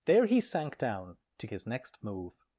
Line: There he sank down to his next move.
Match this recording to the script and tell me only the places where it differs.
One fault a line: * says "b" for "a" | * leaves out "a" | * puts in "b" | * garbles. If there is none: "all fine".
all fine